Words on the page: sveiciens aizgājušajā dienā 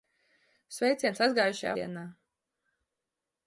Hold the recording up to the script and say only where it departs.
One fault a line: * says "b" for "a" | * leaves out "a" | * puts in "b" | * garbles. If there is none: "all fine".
all fine